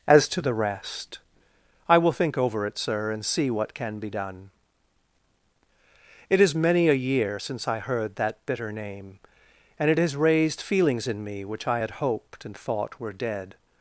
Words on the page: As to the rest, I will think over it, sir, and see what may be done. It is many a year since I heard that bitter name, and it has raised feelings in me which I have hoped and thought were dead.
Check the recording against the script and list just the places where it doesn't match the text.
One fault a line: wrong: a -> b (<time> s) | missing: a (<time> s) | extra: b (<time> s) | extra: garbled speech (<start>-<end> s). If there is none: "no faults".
wrong: may -> can (3.8 s)
wrong: have -> had (11.8 s)